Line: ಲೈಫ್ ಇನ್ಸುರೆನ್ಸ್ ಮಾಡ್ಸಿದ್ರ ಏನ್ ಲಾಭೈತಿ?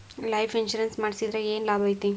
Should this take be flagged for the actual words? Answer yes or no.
no